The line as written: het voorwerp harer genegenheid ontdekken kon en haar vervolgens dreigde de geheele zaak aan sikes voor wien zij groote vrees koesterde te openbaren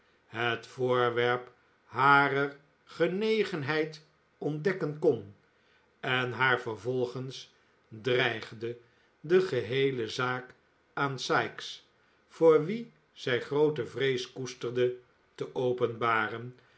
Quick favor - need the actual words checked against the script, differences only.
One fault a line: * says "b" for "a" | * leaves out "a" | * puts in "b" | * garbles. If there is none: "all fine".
all fine